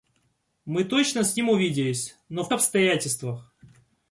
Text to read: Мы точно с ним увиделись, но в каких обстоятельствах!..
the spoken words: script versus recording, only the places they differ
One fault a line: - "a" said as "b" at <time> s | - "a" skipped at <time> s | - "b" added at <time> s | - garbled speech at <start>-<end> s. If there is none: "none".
- "каких" skipped at 2.5 s